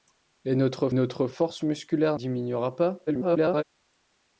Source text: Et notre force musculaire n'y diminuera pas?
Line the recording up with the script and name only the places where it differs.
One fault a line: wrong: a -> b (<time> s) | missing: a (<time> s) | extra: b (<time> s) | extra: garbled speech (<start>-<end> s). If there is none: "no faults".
extra: notre (0.9 s)
missing: n'y (2.2 s)
extra: garbled speech (3.1-3.6 s)